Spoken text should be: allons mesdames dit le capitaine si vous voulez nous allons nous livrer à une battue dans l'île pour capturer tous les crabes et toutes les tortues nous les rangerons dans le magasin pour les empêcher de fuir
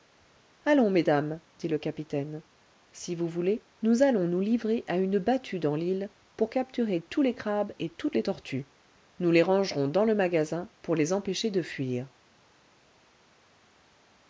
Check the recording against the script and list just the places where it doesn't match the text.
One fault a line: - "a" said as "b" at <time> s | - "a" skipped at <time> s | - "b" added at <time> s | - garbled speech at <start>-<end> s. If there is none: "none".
none